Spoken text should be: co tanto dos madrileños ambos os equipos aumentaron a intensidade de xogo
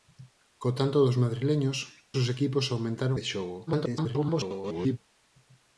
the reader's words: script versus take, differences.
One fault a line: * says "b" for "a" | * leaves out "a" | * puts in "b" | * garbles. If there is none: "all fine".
* leaves out "ambos"
* leaves out "a intensidade"
* garbles